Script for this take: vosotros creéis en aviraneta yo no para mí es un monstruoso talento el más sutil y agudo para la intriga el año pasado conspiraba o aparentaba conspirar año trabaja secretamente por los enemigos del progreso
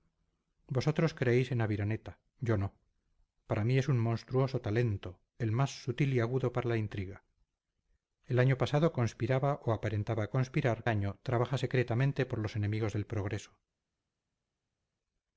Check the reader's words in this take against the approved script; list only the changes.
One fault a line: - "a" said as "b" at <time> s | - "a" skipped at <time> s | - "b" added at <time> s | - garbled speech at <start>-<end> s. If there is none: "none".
none